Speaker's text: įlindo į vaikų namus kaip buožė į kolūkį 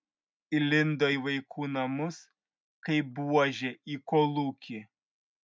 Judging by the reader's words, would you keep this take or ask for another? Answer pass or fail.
pass